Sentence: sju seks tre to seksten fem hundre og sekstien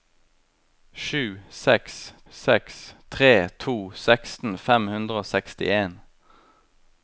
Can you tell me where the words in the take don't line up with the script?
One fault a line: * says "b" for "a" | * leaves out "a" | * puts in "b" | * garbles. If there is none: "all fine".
* puts in "seks"